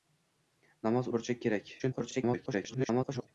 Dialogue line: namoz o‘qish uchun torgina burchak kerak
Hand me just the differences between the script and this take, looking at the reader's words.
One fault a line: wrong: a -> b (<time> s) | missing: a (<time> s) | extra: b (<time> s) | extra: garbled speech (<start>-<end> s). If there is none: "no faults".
missing: o‘qish uchun torgina (1.1 s)
extra: garbled speech (1.8-3.3 s)